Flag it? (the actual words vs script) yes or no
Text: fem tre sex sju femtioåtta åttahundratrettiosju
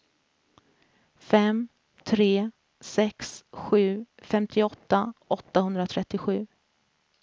no